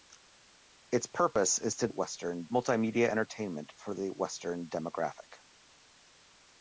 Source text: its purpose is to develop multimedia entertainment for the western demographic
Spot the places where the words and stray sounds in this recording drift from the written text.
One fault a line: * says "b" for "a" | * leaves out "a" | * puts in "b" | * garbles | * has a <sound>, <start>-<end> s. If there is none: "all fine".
* says "western" for "develop"